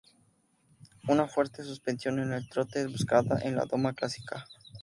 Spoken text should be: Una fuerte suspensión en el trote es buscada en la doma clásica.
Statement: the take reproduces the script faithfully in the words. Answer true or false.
true